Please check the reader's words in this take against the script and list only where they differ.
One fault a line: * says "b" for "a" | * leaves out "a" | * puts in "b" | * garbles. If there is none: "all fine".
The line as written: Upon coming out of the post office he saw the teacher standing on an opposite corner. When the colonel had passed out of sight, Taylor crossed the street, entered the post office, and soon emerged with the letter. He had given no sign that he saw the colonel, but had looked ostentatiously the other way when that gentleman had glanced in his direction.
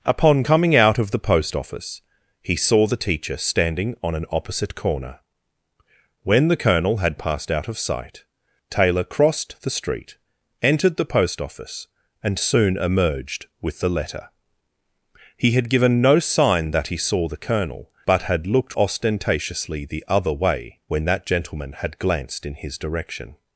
all fine